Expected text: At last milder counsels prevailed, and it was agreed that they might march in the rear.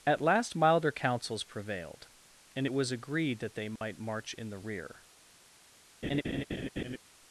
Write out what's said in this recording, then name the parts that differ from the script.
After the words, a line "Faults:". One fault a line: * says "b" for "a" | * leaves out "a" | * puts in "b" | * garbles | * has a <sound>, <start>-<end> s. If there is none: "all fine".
At last milder counsels prevailed, and it was agreed that they might march in the rear.
Faults:
* has a dropout, 3.8-3.8 s
* has a laugh, 6.0-7.0 s